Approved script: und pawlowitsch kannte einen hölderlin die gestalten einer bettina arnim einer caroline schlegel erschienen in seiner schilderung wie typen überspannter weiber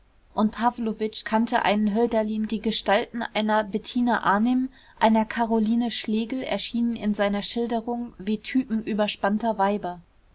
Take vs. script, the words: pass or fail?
pass